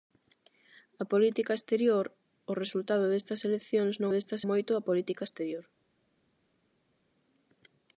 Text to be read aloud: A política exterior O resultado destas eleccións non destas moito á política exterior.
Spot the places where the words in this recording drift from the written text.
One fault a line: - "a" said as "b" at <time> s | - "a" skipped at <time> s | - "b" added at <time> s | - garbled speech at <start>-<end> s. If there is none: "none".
none